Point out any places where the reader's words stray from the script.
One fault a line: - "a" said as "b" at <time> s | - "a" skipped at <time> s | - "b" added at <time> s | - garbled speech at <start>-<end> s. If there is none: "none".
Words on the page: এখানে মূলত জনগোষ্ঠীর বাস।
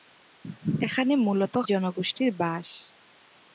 none